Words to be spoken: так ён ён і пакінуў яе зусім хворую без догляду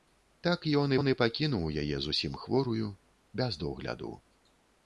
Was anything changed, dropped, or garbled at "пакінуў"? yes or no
no